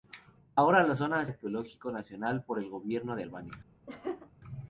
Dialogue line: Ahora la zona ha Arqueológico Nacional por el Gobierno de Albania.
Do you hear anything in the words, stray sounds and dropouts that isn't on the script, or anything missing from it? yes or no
yes